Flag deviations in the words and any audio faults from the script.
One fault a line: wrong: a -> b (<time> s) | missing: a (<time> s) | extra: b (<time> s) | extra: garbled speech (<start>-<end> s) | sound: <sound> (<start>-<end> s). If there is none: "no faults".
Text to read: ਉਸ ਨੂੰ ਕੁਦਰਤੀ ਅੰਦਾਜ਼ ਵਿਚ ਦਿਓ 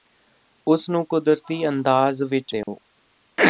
sound: dropout (2.6-2.7 s)